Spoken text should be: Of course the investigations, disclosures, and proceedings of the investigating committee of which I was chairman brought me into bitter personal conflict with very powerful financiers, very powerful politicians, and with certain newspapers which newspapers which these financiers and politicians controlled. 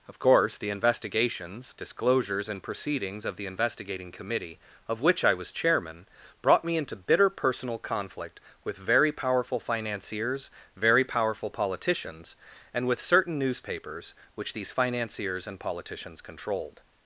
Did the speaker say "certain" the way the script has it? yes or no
yes